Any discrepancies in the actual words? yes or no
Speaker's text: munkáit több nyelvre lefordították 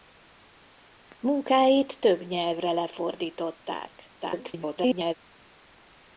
yes